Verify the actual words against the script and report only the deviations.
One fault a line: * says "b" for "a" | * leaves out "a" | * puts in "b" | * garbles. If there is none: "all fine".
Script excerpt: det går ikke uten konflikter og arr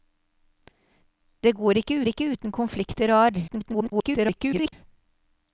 * puts in "ikke"
* garbles